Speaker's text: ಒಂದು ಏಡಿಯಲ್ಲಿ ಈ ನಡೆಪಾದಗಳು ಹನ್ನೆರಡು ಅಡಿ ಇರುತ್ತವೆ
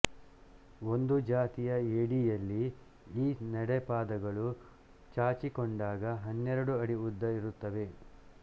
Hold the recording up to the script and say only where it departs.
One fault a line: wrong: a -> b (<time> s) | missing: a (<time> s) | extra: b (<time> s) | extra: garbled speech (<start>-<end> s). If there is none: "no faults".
extra: ಜಾತಿಯ (1.3 s)
extra: ಚಾಚಿಕೊಂಡಾಗ (5.2 s)
extra: ಉದ್ದ (7.1 s)